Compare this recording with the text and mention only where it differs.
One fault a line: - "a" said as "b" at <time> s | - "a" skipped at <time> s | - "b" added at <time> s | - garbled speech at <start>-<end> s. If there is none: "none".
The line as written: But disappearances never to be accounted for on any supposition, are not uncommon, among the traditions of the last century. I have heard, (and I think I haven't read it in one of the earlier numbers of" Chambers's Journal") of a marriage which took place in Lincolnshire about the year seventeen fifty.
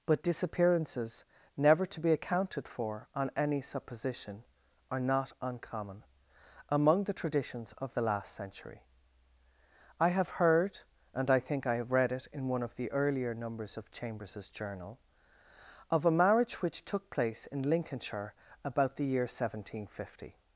- "haven't" said as "have" at 11.8 s